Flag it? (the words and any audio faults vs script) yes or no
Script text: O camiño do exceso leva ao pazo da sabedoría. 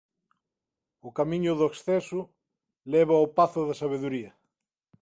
no